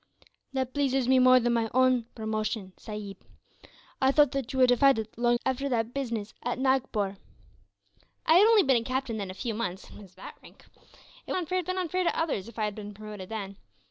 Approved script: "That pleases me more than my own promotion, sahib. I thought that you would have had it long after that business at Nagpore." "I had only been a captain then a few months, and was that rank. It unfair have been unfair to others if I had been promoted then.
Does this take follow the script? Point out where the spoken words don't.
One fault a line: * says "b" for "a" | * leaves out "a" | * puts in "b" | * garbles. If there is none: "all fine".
all fine